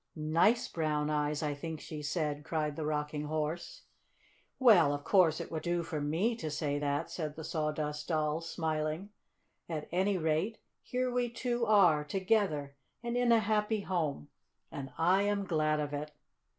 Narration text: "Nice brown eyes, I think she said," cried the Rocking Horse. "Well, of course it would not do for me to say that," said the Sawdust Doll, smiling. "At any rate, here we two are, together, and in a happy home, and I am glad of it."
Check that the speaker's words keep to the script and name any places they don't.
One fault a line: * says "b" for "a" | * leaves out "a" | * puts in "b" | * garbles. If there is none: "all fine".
* leaves out "not"